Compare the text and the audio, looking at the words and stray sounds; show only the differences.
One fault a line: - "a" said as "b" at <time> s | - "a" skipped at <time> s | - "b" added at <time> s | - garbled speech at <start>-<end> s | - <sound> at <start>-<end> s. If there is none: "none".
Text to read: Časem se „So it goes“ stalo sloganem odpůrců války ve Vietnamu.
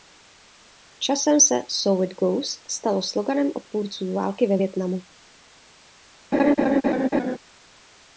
- laugh at 6.3-7.4 s